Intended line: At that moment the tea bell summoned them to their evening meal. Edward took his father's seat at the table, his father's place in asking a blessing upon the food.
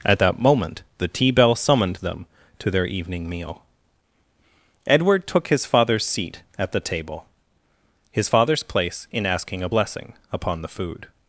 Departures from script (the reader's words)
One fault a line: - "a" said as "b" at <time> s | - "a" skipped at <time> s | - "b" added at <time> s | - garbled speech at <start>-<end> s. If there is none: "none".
none